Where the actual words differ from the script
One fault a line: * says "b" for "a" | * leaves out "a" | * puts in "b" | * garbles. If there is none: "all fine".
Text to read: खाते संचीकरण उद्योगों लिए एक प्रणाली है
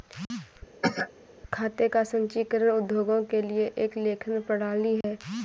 * puts in "का"
* puts in "के"
* puts in "लेखन"